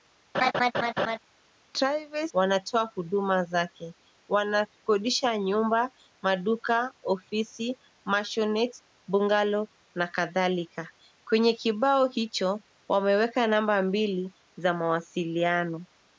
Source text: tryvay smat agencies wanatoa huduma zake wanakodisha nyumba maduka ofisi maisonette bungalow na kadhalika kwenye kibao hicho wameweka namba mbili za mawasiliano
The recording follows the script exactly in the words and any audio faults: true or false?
false